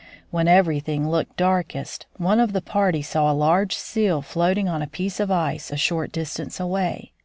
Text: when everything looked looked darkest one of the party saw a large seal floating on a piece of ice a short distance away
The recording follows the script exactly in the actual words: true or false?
false